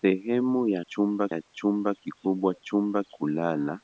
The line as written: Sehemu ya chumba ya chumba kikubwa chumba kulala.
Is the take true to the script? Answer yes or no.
yes